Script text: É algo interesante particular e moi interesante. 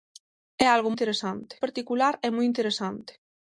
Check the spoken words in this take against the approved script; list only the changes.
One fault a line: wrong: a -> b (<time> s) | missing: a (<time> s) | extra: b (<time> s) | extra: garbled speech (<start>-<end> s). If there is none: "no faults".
no faults